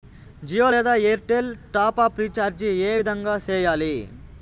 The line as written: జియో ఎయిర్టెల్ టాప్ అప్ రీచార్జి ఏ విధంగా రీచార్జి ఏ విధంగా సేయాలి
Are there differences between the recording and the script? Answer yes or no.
yes